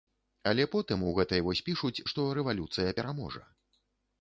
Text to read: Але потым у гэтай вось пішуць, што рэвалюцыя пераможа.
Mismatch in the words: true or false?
false